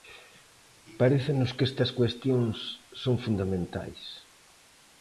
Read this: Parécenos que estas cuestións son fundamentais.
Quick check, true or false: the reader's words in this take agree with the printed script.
true